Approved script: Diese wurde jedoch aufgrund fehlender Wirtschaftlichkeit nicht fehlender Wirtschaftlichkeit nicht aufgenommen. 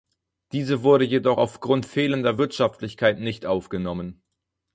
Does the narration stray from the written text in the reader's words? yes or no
yes